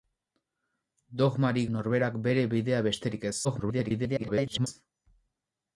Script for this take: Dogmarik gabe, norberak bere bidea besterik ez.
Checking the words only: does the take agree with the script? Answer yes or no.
no